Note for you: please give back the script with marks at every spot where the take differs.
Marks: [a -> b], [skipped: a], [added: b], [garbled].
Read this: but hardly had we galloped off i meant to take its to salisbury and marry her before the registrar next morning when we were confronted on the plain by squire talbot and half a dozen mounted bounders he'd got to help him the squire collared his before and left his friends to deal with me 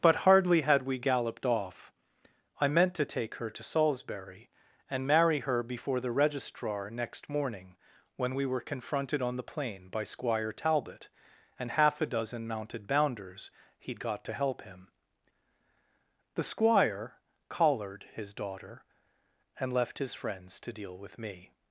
but hardly had we galloped off i meant to take [its -> her] to salisbury and marry her before the registrar next morning when we were confronted on the plain by squire talbot and half a dozen mounted bounders he'd got to help him the squire collared his [before -> daughter] and left his friends to deal with me